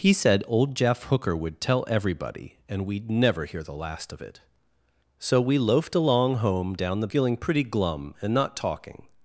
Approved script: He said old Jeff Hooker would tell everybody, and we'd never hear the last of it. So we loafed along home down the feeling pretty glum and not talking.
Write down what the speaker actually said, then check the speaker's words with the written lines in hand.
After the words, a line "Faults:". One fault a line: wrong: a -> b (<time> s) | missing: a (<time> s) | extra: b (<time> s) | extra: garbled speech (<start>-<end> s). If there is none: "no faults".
He said old Jeff Hooker would tell everybody, and we'd never hear the last of it. So we loafed along home down the feeling pretty glum and not talking.
Faults:
no faults